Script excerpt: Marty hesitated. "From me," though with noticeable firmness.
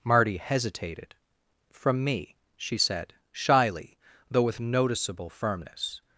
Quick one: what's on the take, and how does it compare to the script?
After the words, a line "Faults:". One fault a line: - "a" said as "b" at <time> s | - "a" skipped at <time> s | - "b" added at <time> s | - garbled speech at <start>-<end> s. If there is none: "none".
Marty hesitated. "From me," she said, shyly, though with noticeable firmness.
Faults:
- "she said shyly" added at 2.6 s